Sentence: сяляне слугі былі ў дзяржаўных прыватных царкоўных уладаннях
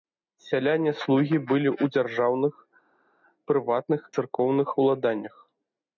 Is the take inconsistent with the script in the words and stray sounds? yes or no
no